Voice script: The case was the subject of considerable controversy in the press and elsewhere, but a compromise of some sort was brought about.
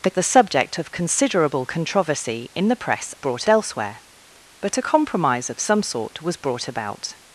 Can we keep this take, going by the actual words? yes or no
no